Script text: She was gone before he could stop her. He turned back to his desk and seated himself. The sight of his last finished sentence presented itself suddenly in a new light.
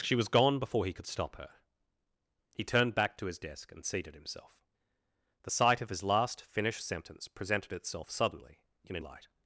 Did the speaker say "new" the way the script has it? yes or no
no